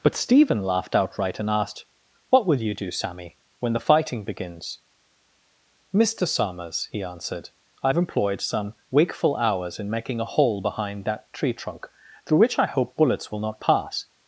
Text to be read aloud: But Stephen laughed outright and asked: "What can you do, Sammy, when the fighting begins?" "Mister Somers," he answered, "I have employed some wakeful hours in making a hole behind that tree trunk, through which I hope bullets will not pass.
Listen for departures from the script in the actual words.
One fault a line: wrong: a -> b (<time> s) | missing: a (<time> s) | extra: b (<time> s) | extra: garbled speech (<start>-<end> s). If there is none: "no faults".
wrong: can -> will (2.5 s)